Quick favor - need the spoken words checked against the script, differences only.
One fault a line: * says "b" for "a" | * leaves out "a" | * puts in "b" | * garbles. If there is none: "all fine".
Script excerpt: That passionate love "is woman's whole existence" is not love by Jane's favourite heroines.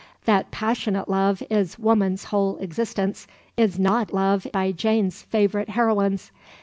all fine